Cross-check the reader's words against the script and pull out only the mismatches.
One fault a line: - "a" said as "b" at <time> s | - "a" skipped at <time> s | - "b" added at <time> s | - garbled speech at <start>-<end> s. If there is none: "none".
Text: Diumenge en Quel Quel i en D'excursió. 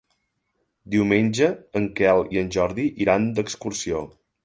- "Quel" skipped at 2.2 s
- "Jordi iran" added at 2.6 s